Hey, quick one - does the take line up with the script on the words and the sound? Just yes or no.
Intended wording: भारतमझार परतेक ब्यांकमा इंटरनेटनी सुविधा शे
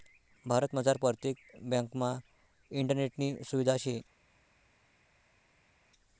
yes